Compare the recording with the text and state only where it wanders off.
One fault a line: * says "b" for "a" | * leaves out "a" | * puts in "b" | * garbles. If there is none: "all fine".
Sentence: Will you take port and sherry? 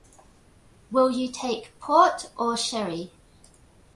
* says "or" for "and"